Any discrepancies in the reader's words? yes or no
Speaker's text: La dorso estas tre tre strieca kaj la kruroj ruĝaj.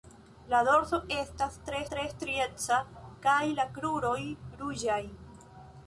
no